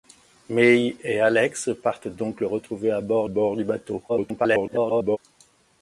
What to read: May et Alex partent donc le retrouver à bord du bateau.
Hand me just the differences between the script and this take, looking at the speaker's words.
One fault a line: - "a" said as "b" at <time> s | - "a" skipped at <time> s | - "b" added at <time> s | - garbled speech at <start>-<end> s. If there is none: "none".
- "bord" added at 3.3 s
- garbled speech at 4.1-5.2 s